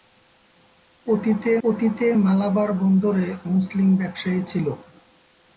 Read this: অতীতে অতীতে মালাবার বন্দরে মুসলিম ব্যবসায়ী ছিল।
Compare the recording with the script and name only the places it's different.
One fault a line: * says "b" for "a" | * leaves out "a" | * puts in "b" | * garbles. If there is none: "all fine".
all fine